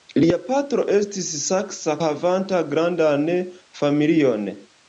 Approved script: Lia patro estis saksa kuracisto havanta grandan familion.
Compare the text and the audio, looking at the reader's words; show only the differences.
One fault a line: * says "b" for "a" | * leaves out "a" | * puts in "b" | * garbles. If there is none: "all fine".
* leaves out "kuracisto"